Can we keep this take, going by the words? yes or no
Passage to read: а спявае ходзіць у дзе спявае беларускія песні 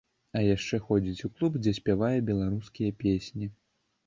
no